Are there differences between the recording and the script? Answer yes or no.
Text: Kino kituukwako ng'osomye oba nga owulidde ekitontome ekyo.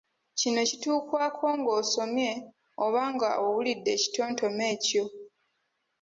no